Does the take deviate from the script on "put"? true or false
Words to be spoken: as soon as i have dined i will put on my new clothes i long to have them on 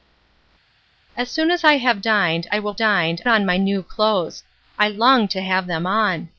true